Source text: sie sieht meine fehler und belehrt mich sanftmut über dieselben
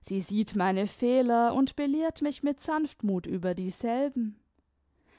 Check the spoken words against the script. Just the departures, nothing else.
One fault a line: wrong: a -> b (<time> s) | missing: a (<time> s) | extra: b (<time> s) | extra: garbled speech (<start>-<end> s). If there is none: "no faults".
extra: mit (2.4 s)